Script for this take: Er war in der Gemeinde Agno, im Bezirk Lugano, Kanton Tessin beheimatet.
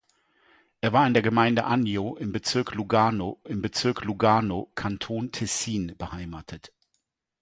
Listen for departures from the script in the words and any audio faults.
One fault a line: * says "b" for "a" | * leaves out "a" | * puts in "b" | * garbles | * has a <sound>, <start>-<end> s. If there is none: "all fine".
* puts in "im Bezirk Lugano"